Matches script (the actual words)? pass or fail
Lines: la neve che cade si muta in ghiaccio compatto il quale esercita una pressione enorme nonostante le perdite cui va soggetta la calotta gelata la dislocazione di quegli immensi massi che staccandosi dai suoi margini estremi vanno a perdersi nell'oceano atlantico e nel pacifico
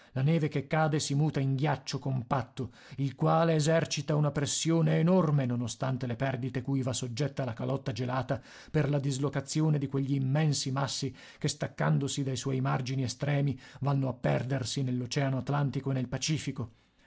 fail